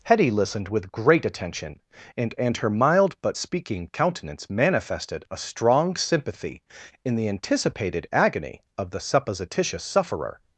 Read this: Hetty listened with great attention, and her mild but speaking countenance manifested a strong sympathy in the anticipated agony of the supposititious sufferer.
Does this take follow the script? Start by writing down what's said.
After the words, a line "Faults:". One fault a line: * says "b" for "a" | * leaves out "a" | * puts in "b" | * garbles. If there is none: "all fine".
Hetty listened with great attention, and and her mild but speaking countenance manifested a strong sympathy in the anticipated agony of the supposititious sufferer.
Faults:
* puts in "and"